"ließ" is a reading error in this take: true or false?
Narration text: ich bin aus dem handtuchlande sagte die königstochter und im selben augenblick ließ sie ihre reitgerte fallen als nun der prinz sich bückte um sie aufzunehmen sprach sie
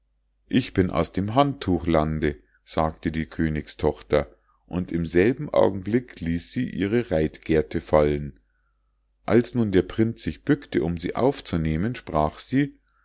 false